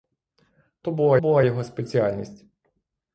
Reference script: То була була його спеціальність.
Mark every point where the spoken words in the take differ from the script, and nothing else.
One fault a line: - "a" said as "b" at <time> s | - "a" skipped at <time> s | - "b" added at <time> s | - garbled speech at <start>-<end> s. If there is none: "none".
none